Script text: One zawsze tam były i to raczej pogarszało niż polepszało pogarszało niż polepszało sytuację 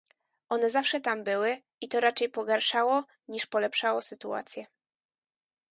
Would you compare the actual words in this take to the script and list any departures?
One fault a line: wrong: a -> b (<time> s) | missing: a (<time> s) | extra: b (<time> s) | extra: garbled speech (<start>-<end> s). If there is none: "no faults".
missing: pogarszało niż polepszało (4.0 s)